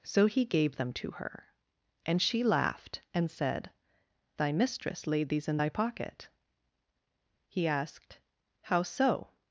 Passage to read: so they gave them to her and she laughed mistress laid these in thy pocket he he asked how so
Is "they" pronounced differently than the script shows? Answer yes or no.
yes